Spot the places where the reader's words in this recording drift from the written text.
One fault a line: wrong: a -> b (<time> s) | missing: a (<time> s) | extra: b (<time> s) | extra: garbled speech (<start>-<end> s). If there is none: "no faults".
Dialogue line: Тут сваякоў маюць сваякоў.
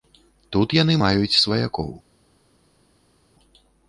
wrong: сваякоў -> яны (0.8 s)